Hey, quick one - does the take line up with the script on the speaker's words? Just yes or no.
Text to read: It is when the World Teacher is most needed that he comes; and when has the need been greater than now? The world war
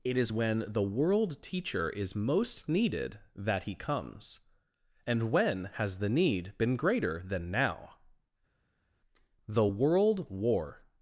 yes